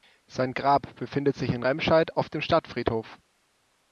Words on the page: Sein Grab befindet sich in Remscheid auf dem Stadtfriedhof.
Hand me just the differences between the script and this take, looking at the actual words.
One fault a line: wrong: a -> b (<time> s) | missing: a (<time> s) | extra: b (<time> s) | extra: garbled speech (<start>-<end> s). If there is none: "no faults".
no faults